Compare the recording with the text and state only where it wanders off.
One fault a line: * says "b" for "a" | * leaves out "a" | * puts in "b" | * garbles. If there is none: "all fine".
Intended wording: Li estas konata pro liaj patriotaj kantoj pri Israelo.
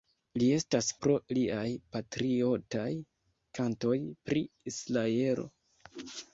* leaves out "konata"